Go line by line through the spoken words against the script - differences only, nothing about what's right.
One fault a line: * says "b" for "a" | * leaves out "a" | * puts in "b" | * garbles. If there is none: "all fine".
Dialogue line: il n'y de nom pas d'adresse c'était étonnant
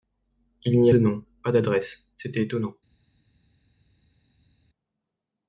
all fine